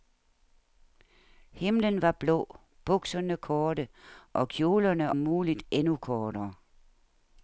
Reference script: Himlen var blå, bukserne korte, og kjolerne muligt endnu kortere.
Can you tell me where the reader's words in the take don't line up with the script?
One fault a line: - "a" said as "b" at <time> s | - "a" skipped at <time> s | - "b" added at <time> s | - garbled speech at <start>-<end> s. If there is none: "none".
none